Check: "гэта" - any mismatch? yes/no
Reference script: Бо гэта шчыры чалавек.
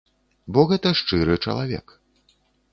no